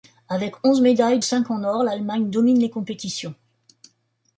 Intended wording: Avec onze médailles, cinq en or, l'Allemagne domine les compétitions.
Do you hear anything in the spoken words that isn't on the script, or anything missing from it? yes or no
no